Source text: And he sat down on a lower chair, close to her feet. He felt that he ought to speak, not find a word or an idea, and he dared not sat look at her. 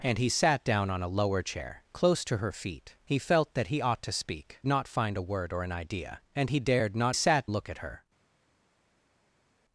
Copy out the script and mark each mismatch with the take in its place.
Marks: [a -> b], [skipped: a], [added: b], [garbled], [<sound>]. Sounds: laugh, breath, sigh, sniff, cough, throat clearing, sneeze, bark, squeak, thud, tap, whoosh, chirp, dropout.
And he sat down on a lower chair, close to her feet. He felt that he ought to speak, not find a word or an idea, and he dared not sat look at her.